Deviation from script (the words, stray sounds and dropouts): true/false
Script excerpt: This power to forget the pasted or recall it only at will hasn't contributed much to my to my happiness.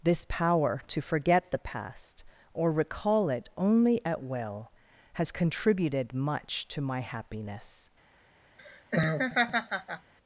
true